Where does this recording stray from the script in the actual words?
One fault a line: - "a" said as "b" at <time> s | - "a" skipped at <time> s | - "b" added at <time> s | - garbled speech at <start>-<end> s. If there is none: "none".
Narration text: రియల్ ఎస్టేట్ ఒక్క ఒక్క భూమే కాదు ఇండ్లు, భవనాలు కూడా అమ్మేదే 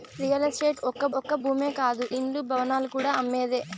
none